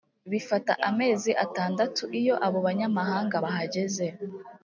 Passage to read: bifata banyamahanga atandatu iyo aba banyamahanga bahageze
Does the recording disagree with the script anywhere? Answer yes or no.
yes